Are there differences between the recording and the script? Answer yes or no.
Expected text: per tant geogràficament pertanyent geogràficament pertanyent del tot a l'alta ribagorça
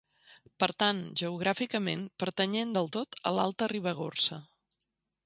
yes